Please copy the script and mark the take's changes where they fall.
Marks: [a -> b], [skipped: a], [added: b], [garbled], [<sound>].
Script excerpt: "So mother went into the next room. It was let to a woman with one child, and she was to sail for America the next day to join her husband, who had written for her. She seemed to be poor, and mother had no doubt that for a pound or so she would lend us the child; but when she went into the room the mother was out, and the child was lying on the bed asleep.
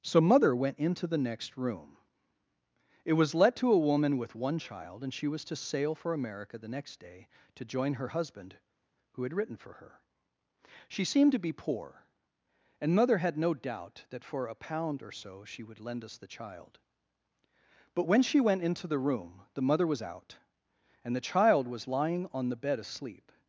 "So mother went into the next room. It was let to a woman with one child, and she was to sail for America the next day to join her husband, who had written for her. She seemed to be poor, and mother had no doubt that for a pound or so she would lend us the child; but when she went into the room the mother was out, and the child was lying on the bed asleep.